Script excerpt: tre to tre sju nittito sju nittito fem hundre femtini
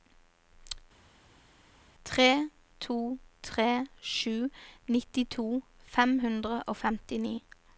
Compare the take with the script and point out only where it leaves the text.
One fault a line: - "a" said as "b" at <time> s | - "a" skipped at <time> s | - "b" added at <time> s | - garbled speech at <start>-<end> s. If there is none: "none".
- "sju nittito" skipped at 5.5 s
- "og" added at 6.6 s